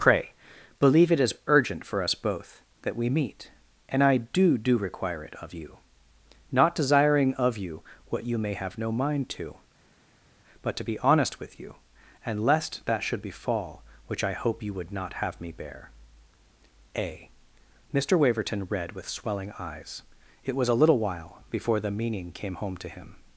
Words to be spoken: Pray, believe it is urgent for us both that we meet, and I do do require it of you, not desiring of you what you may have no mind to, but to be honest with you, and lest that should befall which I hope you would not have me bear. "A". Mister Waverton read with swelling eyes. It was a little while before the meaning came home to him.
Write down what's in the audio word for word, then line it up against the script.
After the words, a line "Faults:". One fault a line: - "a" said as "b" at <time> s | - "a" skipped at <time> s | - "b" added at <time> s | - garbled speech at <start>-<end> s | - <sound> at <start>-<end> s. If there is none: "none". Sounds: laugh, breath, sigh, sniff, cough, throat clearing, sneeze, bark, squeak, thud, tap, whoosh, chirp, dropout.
Pray, believe it is urgent for us both that we meet, and I do do require it of you, not desiring of you what you may have no mind to, but to be honest with you, and lest that should befall which I hope you would not have me bear. "A". Mister Waverton read with swelling eyes. It was a little while before the meaning came home to him.
Faults:
none